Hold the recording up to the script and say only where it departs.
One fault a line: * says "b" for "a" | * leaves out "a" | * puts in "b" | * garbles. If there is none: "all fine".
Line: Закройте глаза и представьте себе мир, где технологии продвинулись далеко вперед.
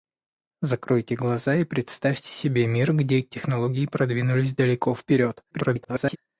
* garbles